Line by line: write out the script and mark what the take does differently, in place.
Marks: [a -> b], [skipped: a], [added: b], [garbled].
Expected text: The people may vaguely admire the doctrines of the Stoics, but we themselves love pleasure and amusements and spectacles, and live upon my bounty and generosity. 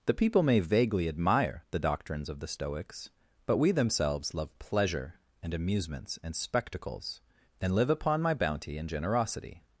The people may vaguely admire the doctrines of the Stoics, but we themselves love pleasure and amusements and spectacles, and live upon my bounty and generosity.